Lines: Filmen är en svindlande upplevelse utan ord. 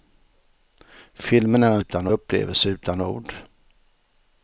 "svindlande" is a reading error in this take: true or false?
true